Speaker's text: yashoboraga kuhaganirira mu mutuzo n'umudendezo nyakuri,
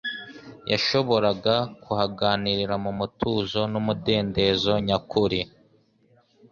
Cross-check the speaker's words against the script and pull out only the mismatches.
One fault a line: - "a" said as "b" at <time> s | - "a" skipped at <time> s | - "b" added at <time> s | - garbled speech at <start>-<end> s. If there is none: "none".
none